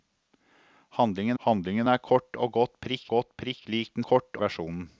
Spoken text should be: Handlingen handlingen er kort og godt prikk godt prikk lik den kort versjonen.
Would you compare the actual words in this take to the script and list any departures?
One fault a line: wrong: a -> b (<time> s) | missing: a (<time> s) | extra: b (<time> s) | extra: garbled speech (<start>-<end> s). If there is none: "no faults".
no faults